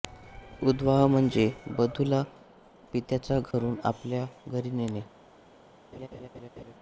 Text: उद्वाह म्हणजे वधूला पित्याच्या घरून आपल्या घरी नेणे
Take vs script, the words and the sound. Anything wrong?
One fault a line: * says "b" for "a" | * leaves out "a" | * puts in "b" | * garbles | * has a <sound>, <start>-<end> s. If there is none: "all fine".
* has a dropout, 3.5-3.5 s
* has a laugh, 5.9-6.7 s